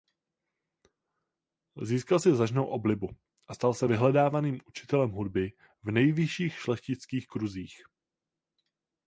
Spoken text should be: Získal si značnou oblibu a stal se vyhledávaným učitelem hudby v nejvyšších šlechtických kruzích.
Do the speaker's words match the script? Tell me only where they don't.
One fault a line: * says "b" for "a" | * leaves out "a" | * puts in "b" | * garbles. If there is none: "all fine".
all fine